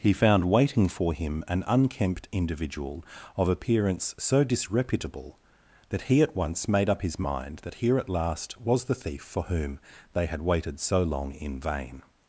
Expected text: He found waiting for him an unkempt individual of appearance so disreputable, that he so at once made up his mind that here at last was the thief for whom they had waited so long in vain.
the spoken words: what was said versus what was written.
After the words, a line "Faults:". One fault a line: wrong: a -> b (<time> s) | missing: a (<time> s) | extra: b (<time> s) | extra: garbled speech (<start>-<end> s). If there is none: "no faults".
He found waiting for him an unkempt individual of appearance so disreputable, that he at once made up his mind that here at last was the thief for whom they had waited so long in vain.
Faults:
missing: so (6.2 s)